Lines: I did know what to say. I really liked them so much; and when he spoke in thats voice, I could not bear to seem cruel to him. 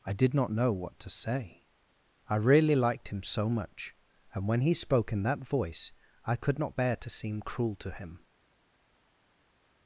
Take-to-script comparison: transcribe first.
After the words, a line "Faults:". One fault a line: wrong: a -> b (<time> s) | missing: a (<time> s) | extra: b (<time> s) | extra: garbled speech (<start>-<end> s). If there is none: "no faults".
I did not know what to say. I really liked him so much; and when he spoke in that voice, I could not bear to seem cruel to him.
Faults:
extra: not (0.3 s)
wrong: them -> him (3.1 s)
wrong: thats -> that (5.2 s)